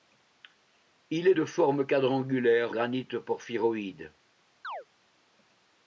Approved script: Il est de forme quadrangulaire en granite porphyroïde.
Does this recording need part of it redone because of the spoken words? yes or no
yes